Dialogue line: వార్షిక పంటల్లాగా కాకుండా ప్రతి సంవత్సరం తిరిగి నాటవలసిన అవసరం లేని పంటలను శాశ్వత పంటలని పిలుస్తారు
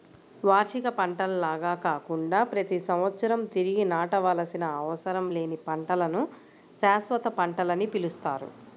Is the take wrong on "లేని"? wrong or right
right